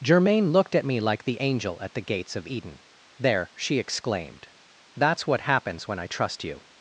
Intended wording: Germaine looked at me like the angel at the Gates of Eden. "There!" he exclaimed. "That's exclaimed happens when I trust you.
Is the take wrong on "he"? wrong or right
wrong